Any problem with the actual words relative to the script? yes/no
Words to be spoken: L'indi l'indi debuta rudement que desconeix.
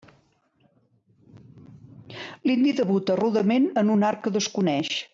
yes